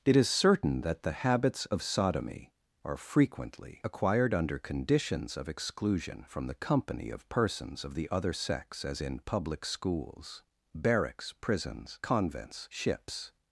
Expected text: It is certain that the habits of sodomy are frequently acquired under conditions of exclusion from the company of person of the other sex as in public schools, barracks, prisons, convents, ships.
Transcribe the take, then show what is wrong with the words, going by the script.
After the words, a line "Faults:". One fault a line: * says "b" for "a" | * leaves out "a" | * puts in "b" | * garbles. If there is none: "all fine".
It is certain that the habits of sodomy are frequently acquired under conditions of exclusion from the company of persons of the other sex as in public schools, barracks, prisons, convents, ships.
Faults:
* says "persons" for "person"